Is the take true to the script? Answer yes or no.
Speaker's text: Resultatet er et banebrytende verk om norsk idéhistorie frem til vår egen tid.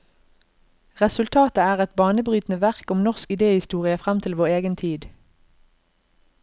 yes